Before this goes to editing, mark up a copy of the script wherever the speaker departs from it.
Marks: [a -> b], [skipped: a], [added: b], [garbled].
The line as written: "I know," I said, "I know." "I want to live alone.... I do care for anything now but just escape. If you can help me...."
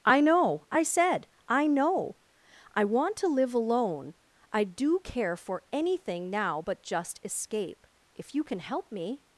"I know," I said, "I know." "I want to live alone.... I do care for anything now but just escape. If you can help me...."